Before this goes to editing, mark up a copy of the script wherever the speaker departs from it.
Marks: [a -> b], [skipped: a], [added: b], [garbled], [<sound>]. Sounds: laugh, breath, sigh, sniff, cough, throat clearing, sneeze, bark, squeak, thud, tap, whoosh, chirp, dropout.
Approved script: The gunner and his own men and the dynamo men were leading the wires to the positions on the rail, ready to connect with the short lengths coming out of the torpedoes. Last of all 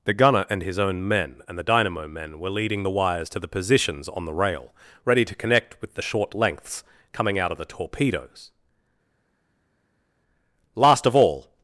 The gunner and his own men and the dynamo men were leading the wires to the positions on the rail, ready to connect with the short lengths coming out of the torpedoes. Last of all